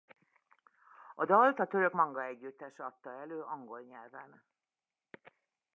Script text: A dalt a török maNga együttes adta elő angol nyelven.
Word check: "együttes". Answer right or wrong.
right